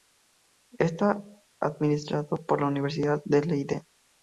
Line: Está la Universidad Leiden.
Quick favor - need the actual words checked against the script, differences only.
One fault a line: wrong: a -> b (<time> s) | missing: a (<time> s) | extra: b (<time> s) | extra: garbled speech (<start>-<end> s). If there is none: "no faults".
extra: administrado por (1.6 s)
extra: de (3.3 s)